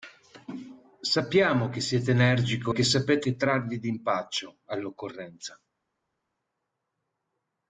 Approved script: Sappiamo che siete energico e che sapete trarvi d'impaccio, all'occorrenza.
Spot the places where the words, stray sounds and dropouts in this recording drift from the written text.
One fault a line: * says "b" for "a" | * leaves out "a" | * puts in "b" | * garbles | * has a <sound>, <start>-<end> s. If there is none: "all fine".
* leaves out "e"